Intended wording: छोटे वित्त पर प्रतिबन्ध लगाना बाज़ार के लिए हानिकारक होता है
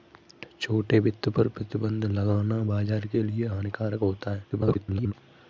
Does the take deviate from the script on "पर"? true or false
false